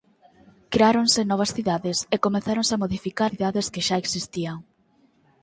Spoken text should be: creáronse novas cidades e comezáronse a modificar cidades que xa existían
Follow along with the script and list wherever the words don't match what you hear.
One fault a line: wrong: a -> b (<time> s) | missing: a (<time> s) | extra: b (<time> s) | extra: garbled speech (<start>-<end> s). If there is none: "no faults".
no faults